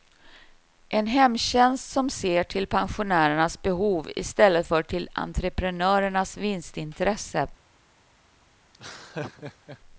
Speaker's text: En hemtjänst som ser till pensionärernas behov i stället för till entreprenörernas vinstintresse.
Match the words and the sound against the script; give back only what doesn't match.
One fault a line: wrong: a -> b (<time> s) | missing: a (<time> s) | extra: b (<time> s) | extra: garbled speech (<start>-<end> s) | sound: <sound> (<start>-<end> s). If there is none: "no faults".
sound: laugh (8.7-9.8 s)